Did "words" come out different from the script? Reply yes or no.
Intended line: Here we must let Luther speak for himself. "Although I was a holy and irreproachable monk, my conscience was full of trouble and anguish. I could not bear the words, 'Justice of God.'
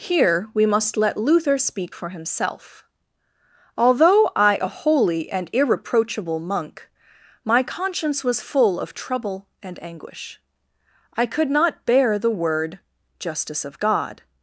yes